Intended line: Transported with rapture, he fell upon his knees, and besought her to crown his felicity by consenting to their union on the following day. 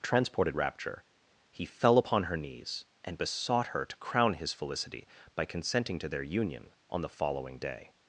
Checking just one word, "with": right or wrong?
wrong